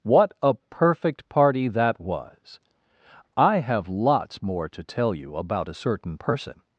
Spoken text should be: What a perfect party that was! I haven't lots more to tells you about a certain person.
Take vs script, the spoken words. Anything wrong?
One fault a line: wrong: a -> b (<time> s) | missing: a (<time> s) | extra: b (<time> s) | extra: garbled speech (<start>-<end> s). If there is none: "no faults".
wrong: haven't -> have (3.6 s)
wrong: tells -> tell (4.8 s)